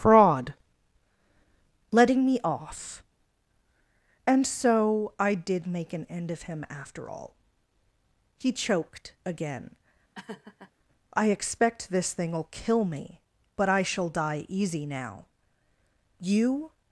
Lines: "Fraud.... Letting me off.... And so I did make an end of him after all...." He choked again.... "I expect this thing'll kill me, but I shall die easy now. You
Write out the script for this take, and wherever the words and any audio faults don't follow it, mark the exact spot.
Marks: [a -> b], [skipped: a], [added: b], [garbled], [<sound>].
"Fraud.... Letting me off.... And so I did make an end of him after all...." He choked again.... [laugh] "I expect this thing'll kill me, but I shall die easy now. You